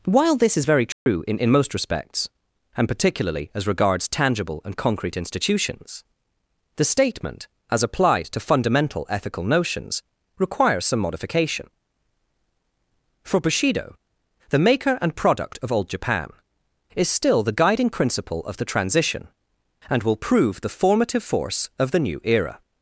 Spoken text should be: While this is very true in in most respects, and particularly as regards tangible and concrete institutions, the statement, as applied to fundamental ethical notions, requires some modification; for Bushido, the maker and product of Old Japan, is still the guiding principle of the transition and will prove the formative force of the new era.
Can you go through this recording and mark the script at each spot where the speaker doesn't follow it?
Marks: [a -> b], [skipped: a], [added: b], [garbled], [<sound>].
While this is very true [dropout] in in most respects, and particularly as regards tangible and concrete institutions, the statement, as applied to fundamental ethical notions, requires some modification; for Bushido, the maker and product of Old Japan, is still the guiding principle of the transition and will prove the formative force of the new era.